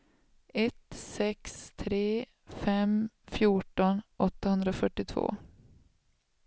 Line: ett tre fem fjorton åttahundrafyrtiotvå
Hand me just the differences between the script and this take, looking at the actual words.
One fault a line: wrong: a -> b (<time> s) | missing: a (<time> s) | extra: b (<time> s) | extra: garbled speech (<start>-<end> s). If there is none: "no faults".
extra: sex (0.9 s)